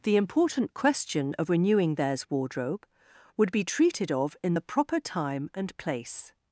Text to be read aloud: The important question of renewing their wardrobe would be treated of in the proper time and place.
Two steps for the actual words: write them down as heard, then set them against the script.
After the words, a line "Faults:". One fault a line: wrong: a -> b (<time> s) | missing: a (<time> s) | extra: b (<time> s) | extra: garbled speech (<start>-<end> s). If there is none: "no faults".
The important question of renewing theirs wardrobe would be treated of in the proper time and place.
Faults:
wrong: their -> theirs (2.0 s)